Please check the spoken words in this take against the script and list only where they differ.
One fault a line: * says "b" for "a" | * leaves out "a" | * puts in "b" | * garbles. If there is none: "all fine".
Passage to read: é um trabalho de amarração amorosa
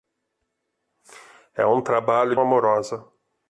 * leaves out "de amarração"